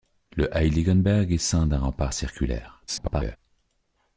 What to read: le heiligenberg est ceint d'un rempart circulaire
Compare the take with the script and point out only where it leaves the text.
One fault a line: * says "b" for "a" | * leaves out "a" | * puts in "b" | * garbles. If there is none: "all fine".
* garbles